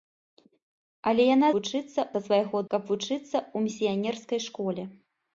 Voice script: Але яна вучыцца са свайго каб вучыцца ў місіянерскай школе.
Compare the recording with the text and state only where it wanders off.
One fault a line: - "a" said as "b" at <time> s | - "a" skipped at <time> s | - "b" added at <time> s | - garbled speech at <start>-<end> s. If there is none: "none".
none